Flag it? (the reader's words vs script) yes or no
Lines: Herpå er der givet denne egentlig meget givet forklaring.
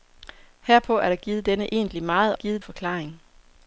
no